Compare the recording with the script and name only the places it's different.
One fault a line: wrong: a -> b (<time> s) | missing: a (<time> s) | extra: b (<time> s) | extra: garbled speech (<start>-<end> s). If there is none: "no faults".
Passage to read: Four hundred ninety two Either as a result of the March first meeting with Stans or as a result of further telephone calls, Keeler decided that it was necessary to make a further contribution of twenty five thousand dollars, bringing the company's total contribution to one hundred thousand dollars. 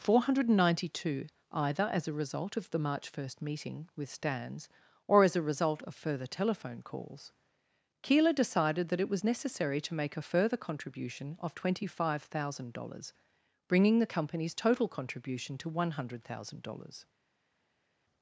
no faults